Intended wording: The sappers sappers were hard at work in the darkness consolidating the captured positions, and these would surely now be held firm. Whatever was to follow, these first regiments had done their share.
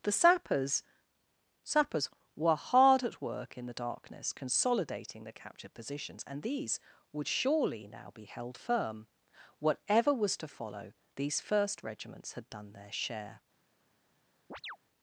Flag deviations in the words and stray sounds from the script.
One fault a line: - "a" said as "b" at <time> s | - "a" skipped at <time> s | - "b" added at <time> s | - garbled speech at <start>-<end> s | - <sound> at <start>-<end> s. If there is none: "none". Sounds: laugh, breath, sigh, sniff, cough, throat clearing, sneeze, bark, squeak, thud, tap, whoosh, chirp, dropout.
- chirp at 14.5-14.8 s